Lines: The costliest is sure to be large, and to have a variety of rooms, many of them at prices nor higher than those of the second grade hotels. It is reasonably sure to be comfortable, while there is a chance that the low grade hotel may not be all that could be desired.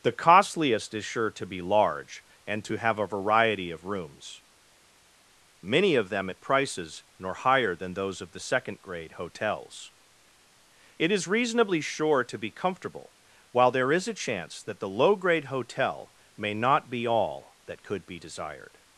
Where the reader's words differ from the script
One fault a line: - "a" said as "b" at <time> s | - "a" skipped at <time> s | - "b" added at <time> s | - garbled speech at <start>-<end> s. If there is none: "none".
none